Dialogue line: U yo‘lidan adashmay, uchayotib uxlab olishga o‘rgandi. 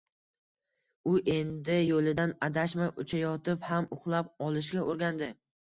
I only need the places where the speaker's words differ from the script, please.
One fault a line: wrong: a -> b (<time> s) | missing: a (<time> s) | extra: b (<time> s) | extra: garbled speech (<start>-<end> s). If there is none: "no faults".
extra: endi (1.3 s)
extra: ham (3.7 s)